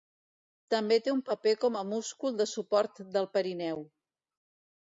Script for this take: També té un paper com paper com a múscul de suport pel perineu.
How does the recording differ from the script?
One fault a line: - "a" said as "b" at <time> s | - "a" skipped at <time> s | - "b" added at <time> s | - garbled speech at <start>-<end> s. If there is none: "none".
- "paper com" skipped at 1.8 s
- "pel" said as "del" at 3.2 s